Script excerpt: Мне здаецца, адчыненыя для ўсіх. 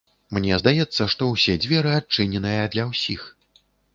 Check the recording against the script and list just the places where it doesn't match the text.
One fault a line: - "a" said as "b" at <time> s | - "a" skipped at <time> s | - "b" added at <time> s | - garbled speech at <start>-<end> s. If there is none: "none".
- "што ўсе дзверы" added at 1.1 s